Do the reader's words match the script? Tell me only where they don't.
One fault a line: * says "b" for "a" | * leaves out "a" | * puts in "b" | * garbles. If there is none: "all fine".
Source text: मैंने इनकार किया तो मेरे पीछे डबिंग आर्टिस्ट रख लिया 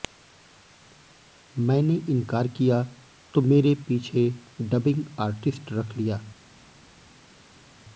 all fine